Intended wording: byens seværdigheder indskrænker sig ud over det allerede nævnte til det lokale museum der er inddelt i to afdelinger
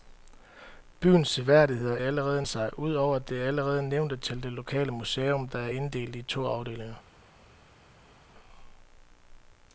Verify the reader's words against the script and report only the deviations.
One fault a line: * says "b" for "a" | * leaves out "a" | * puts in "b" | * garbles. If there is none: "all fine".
* says "allerede" for "indskrænker"